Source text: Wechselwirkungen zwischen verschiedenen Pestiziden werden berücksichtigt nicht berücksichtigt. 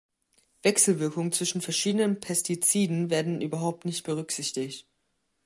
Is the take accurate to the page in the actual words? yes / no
no